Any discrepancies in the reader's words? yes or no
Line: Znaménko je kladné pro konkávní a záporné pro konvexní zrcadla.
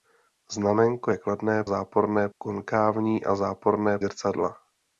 yes